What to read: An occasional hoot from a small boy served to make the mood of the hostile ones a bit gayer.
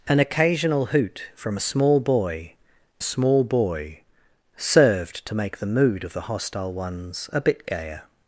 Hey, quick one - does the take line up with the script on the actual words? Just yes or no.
no